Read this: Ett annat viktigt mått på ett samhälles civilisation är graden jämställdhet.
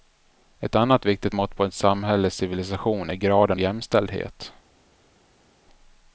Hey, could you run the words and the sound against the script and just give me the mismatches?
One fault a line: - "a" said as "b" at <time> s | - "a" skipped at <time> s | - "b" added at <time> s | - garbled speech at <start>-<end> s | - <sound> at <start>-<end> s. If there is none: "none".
none